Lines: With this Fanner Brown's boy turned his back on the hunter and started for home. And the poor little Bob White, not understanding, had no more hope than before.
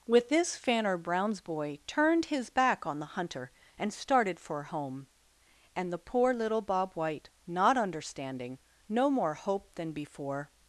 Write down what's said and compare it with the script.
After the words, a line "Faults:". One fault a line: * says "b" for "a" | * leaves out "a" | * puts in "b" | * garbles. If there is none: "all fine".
With this Fanner Brown's boy turned his back on the hunter and started for home. And the poor little Bob White, not understanding, no more hope than before.
Faults:
* leaves out "had"